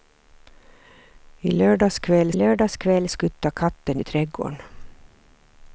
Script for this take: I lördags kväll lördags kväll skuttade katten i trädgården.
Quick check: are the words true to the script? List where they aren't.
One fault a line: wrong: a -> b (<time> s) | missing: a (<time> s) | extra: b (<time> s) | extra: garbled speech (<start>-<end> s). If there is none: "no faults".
no faults